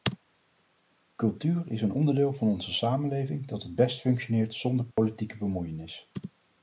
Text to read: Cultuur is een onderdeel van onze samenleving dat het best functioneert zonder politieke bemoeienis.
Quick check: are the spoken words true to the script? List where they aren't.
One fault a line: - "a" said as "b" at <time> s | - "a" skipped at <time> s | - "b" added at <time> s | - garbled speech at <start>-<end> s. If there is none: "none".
none